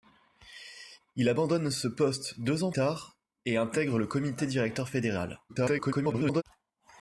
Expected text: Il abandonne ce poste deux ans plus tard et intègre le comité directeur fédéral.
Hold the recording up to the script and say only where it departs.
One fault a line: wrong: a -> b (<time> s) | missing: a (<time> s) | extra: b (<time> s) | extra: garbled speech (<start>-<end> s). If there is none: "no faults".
missing: plus (2.7 s)
extra: garbled speech (5.5-6.4 s)